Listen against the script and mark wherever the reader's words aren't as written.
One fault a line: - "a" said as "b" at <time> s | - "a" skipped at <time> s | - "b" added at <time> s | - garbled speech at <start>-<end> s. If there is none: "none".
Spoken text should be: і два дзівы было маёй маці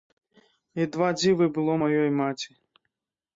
none